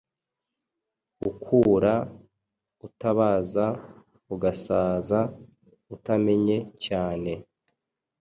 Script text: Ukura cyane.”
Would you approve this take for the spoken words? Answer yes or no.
no